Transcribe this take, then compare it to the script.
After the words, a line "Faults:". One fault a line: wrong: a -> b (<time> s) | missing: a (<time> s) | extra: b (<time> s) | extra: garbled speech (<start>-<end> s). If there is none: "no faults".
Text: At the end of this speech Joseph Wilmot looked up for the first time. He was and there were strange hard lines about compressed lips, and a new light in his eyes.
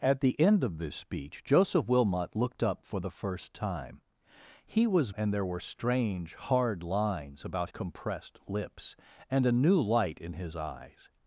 At the end of this speech Joseph Wilmot looked up for the first time. He was and there were strange hard lines about compressed lips, and a new light in his eyes.
Faults:
no faults